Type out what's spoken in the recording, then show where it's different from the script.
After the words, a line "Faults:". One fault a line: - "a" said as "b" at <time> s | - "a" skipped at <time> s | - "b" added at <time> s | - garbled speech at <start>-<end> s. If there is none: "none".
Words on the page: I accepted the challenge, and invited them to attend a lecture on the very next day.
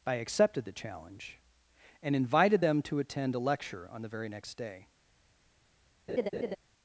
I accepted the challenge, and invited them to attend a lecture on the very next day.
Faults:
none